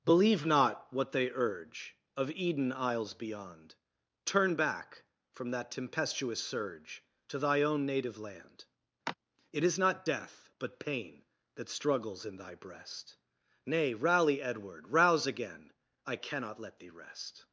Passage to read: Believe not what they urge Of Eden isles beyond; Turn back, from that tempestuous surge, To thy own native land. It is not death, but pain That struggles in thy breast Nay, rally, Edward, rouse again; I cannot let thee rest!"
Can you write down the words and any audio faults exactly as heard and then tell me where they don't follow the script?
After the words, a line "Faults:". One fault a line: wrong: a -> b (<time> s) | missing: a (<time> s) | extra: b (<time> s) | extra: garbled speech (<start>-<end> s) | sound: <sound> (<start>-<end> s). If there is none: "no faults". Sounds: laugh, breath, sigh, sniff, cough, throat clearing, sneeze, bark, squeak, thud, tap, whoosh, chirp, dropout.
Believe not what they urge Of Eden isles beyond; Turn back, from that tempestuous surge, To thy own native land. It is not death, but pain That struggles in thy breast Nay, rally, Edward, rouse again; I cannot let thee rest!"
Faults:
sound: sigh (9.1-9.1 s)